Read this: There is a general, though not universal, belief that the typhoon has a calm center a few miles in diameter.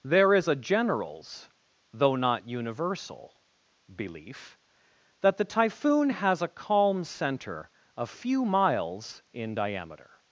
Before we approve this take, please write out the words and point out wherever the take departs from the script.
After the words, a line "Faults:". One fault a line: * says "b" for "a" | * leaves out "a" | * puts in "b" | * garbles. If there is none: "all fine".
There is a generals, though not universal, belief that the typhoon has a calm center a few miles in diameter.
Faults:
* says "generals" for "general"